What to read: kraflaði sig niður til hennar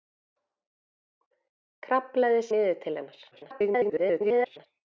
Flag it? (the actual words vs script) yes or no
yes